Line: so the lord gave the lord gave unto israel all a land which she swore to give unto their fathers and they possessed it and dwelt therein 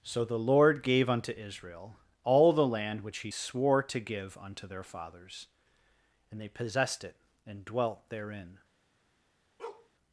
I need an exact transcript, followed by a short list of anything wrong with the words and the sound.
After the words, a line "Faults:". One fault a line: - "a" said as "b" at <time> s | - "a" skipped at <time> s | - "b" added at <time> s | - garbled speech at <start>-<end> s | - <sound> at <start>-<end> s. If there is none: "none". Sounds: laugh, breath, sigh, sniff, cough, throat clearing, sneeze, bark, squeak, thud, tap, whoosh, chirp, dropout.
so the lord gave unto israel all the land which he swore to give unto their fathers and they possessed it and dwelt therein
Faults:
- "the lord gave" skipped at 1.1 s
- "a" said as "the" at 2.5 s
- "she" said as "he" at 3.2 s
- bark at 9.6-9.9 s